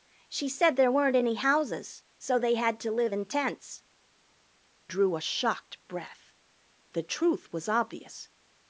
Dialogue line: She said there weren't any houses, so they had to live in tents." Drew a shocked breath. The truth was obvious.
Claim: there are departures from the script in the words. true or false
false